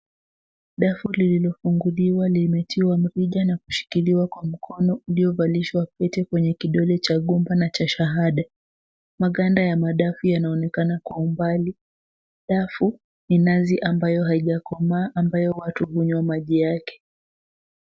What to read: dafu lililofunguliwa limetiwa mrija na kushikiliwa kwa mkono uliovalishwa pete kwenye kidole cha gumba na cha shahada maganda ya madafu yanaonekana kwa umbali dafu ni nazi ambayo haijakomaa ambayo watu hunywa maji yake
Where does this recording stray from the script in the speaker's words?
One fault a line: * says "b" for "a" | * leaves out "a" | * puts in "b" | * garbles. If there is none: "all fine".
all fine